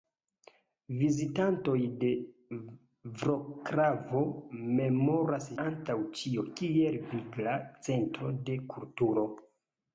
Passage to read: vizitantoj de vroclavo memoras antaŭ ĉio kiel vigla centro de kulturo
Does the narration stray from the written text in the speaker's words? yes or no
no